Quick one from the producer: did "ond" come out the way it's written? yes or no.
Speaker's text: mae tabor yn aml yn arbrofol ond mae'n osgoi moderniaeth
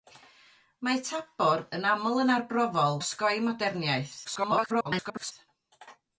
no